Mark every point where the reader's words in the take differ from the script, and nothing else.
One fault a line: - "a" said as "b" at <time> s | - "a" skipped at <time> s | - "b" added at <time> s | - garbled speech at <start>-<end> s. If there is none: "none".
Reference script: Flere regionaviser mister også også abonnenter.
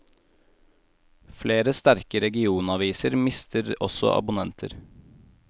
- "sterke" added at 1.8 s
- "også" skipped at 4.1 s